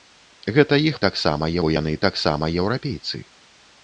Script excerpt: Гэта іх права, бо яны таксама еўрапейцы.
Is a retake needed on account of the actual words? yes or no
yes